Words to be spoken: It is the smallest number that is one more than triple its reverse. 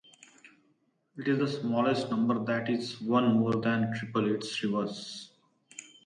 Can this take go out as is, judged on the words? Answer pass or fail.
pass